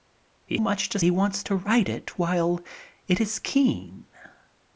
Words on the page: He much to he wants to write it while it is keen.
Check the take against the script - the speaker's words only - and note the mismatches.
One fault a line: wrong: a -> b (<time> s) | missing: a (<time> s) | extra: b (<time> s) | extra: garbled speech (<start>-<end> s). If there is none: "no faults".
no faults